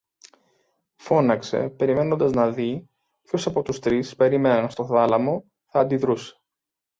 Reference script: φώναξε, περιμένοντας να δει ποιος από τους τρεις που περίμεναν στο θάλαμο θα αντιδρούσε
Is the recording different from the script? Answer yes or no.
yes